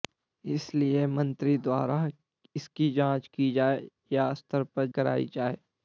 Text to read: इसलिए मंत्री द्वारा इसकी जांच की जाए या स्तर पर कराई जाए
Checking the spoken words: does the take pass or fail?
pass